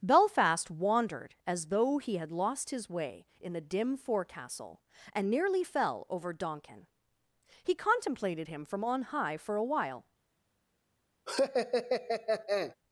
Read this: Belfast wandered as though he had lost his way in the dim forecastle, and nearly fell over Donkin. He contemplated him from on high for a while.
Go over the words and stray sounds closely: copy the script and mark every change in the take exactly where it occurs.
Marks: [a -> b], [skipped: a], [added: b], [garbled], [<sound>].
Belfast wandered as though he had lost his way in the dim forecastle, and nearly fell over Donkin. He contemplated him from on high for a while. [laugh]